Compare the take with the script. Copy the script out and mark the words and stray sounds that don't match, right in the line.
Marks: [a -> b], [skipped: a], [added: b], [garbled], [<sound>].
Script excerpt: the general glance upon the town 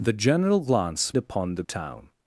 the general glance upon the town